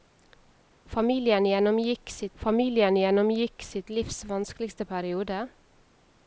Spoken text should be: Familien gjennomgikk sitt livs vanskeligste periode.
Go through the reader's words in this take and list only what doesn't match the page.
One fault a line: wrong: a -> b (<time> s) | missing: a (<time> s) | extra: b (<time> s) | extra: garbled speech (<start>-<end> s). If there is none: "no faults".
extra: familien gjennomgikk sitt (2.4 s)